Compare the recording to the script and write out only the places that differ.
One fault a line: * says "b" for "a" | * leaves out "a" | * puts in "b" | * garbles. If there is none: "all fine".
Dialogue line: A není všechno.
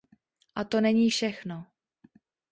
* puts in "to"